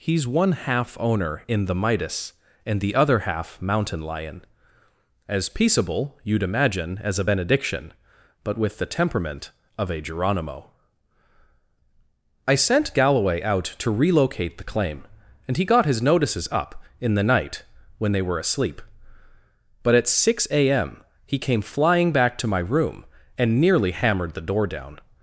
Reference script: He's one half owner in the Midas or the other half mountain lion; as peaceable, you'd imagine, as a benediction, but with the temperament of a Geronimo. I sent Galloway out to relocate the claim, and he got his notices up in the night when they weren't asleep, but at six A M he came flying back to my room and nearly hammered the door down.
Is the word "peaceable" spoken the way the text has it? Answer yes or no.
yes